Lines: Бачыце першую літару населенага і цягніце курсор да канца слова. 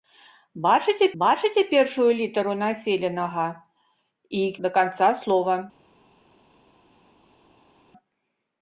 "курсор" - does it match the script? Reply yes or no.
no